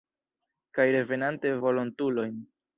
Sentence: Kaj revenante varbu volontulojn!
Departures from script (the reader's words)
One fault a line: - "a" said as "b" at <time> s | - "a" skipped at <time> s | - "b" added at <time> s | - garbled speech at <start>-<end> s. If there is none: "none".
- "varbu" skipped at 1.5 s